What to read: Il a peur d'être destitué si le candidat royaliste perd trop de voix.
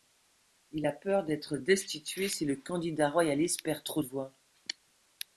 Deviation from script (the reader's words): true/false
false